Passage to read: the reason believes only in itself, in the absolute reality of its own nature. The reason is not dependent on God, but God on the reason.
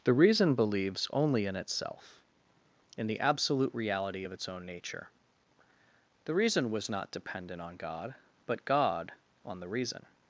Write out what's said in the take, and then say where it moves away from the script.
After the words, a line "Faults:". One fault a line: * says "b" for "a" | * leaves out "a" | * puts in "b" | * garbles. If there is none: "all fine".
the reason believes only in itself, in the absolute reality of its own nature. The reason was not dependent on God, but God on the reason.
Faults:
* says "was" for "is"